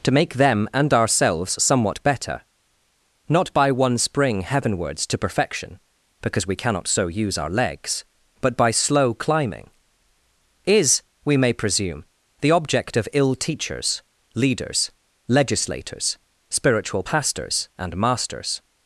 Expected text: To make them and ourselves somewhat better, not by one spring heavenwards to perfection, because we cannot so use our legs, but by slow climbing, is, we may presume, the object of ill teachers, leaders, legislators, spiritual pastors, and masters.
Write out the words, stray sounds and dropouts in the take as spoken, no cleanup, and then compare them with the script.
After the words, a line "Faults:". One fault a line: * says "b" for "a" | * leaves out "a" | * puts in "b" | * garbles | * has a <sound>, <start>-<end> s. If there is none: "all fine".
To make them and ourselves somewhat better, not by one spring heavenwards to perfection, because we cannot so use our legs, but by slow climbing, is, we may presume, the object of ill teachers, leaders, legislators, spiritual pastors, and masters.
Faults:
all fine